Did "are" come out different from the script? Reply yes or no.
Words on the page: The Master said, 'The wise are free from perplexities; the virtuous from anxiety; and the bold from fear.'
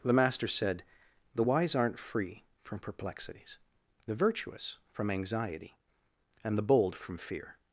yes